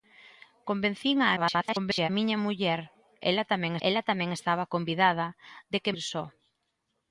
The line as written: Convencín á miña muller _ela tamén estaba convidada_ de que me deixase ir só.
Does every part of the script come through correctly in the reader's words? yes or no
no